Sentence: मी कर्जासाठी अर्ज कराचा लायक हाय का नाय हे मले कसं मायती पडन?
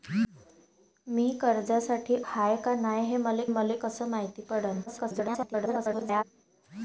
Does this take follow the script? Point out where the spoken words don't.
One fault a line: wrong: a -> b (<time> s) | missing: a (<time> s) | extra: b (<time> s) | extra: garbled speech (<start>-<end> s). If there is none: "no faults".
missing: अर्ज कराचा लायक (2.1 s)
extra: मले (3.5 s)
extra: garbled speech (4.9-6.2 s)